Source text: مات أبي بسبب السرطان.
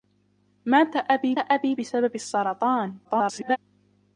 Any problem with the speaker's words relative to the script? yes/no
yes